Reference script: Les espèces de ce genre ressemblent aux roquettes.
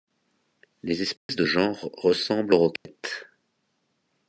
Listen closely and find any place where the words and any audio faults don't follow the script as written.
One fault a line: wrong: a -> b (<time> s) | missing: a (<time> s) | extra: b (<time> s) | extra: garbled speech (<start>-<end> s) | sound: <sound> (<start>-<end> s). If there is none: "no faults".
sound: dropout (1.2-1.3 s)
missing: ce (1.4 s)
sound: dropout (2.8-2.9 s)